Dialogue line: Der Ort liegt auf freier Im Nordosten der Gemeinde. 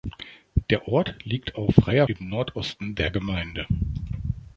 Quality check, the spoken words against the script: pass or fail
pass